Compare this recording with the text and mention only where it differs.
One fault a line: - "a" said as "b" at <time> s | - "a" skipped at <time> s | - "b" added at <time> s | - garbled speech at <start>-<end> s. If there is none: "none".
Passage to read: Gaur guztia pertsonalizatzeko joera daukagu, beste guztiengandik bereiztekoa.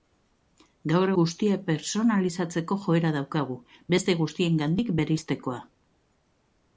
none